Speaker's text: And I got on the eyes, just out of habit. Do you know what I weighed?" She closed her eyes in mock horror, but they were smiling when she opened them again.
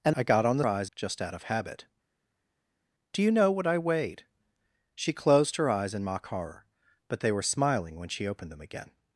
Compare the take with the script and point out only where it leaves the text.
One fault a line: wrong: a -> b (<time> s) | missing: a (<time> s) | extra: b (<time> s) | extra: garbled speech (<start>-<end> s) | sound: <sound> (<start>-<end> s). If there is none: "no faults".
no faults